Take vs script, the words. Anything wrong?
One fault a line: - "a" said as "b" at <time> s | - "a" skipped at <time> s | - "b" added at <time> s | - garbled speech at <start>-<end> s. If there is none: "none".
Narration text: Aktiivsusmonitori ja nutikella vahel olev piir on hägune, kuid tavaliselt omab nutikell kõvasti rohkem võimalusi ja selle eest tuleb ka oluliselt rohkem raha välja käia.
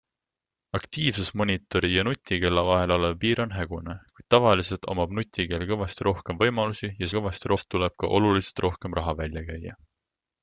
- "selle" said as "kõvasti" at 7.2 s